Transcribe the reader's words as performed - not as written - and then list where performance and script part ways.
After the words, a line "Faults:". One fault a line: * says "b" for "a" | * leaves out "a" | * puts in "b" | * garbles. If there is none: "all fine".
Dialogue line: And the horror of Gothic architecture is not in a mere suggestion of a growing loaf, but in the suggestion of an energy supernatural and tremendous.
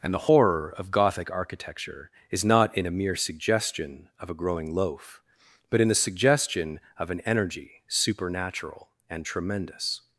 And the horror of Gothic architecture is not in a mere suggestion of a growing loaf, but in the suggestion of an energy supernatural and tremendous.
Faults:
all fine